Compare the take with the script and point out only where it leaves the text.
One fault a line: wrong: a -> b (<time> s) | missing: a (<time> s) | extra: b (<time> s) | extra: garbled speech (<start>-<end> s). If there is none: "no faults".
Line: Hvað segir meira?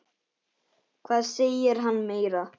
extra: hann (1.9 s)